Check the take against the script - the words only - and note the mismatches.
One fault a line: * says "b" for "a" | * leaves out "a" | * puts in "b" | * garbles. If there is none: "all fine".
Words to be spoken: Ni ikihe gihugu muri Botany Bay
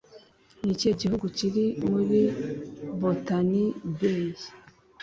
* puts in "kiri"